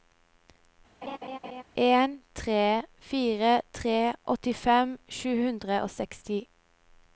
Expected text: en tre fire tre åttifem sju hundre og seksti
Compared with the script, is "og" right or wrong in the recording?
right